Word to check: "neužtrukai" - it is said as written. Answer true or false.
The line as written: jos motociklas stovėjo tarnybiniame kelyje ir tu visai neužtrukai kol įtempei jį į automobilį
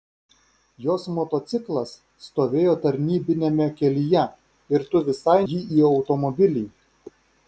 false